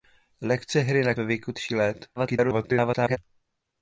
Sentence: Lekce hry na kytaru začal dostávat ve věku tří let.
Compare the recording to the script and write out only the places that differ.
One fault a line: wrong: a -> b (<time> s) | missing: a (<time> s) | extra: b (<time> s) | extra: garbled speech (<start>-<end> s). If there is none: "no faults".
missing: kytaru začal dostávat (1.1 s)
extra: garbled speech (2.2-3.2 s)